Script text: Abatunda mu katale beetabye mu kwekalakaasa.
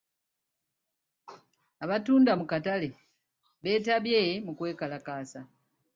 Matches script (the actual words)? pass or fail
pass